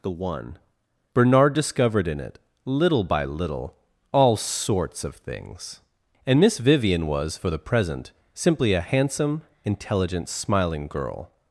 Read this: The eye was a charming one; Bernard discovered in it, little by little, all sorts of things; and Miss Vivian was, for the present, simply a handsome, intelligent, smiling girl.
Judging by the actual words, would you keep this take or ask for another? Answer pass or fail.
fail